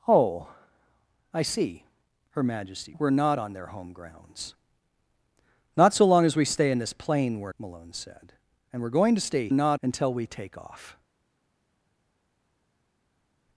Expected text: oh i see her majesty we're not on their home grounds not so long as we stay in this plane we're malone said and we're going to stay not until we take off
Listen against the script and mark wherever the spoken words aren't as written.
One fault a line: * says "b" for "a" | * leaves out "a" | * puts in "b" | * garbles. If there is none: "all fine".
all fine